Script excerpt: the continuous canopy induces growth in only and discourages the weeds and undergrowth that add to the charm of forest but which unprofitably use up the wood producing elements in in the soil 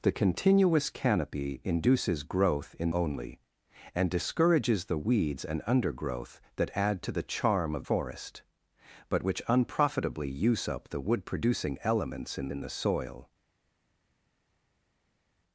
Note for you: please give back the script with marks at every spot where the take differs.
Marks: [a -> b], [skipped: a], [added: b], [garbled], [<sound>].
the continuous canopy induces growth in only and discourages the weeds and undergrowth that add to the charm of forest but which unprofitably use up the wood producing elements in in the soil